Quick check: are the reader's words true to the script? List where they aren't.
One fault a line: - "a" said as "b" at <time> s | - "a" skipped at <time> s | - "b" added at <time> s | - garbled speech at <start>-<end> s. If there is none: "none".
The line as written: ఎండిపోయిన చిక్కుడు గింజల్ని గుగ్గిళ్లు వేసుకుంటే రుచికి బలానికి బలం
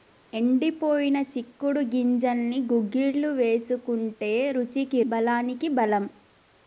none